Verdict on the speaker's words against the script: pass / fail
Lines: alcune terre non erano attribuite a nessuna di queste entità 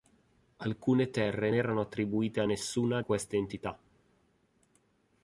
fail